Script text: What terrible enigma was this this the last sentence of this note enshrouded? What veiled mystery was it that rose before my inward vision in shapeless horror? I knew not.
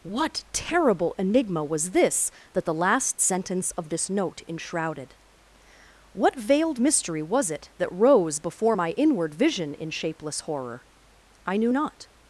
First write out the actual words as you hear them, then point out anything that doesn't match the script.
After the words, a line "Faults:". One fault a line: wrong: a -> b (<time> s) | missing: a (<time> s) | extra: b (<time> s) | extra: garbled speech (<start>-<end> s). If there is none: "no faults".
What terrible enigma was this that the last sentence of this note enshrouded? What veiled mystery was it that rose before my inward vision in shapeless horror? I knew not.
Faults:
wrong: this -> that (2.5 s)